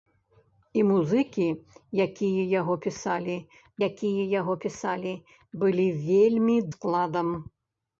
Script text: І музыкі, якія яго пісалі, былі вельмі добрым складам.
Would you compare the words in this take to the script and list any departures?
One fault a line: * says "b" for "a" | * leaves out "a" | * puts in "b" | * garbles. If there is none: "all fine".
* puts in "якія яго пісалі"
* leaves out "добрым"